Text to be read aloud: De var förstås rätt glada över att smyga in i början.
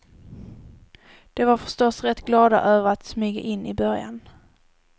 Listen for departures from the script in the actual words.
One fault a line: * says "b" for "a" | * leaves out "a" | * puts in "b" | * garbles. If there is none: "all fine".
all fine